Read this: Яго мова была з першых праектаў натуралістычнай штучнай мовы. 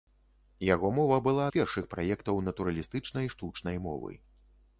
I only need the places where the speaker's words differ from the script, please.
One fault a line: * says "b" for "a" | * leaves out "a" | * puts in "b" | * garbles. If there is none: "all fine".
all fine